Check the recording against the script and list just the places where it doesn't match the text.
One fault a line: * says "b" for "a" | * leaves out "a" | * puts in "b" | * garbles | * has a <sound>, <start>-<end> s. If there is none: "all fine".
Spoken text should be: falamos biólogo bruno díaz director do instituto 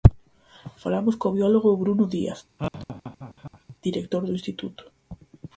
* puts in "co"
* has a laugh, 2.6-3.8 s